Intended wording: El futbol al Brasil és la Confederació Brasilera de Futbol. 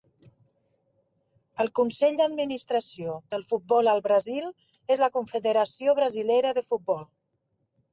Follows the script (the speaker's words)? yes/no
no